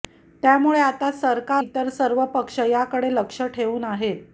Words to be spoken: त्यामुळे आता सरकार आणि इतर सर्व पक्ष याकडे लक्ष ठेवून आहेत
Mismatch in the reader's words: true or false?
true